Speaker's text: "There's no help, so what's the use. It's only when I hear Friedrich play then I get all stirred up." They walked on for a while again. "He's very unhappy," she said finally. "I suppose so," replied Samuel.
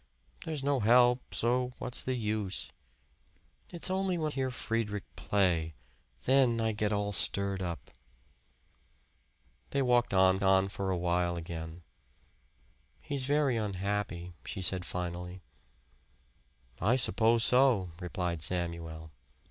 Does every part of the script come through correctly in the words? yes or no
no